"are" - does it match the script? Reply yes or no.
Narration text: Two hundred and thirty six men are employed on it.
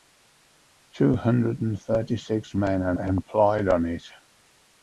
yes